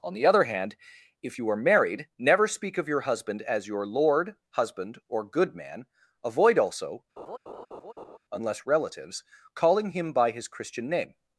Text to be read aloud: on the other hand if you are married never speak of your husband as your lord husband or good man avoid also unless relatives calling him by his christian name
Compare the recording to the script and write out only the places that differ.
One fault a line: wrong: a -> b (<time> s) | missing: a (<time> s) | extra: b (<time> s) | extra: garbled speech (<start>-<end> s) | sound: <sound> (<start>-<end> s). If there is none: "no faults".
sound: laugh (7.2-8.2 s)